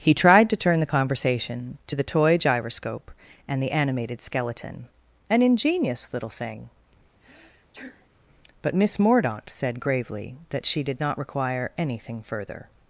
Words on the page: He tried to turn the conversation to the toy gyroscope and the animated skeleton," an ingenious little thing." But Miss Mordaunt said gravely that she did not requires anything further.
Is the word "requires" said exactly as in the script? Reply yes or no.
no